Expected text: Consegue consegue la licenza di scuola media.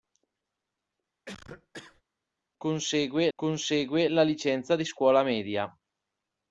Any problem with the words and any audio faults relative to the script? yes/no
yes